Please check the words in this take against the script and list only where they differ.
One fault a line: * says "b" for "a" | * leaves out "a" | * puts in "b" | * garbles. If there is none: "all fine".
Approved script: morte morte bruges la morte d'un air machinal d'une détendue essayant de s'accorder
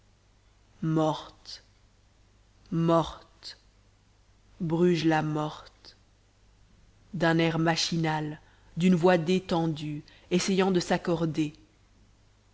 * puts in "voix"